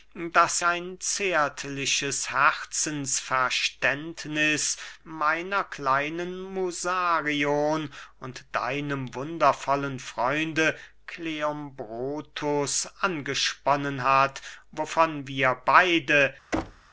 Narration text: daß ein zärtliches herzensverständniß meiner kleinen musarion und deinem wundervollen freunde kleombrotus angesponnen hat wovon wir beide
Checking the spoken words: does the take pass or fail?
pass